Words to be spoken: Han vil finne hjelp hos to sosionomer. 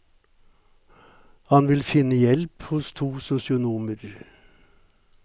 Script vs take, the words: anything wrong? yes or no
no